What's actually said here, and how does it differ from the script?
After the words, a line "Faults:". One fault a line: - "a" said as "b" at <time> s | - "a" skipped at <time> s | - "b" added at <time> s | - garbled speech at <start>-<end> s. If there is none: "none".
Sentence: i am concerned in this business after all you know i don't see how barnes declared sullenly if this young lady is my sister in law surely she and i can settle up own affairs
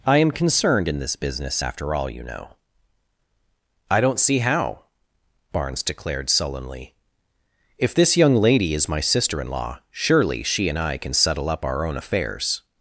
i am concerned in this business after all you know i don't see how barnes declared sullenly if this young lady is my sister in law surely she and i can settle up our own affairs
Faults:
- "our" added at 11.6 s